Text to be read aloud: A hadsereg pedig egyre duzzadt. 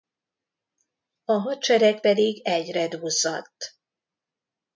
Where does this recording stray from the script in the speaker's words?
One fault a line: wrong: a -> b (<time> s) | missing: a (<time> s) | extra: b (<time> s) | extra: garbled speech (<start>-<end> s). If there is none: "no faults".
no faults